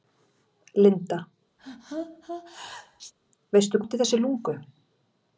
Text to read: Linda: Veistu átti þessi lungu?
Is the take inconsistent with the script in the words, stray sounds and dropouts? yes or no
yes